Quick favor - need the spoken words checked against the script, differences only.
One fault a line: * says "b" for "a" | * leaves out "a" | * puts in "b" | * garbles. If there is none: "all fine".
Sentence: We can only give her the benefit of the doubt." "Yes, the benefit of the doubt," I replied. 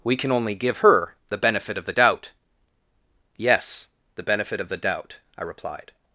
all fine